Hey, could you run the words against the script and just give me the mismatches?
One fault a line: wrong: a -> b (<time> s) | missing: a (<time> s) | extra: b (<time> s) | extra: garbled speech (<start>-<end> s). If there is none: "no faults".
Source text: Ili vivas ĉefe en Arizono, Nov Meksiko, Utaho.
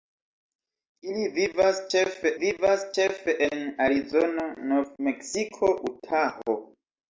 extra: vivas ĉefe (2.4 s)